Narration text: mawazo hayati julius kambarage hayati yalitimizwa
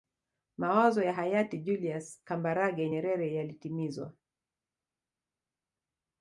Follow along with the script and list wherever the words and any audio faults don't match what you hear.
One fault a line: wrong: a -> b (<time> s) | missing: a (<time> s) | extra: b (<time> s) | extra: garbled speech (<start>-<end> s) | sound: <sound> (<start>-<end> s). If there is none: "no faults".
extra: ya (1.0 s)
wrong: hayati -> nyerere (2.9 s)